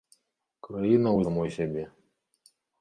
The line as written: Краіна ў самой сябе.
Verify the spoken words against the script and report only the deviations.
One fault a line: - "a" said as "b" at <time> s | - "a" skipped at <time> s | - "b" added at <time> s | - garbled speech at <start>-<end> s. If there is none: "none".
none